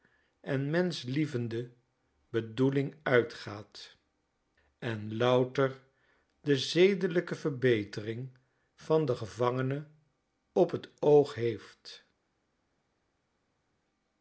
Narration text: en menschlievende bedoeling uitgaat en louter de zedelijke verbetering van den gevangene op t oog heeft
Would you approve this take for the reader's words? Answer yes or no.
yes